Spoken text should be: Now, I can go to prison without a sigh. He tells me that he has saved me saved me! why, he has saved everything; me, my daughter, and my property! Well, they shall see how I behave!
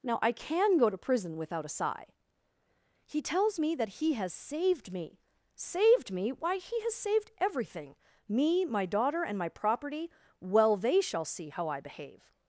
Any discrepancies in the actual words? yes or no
no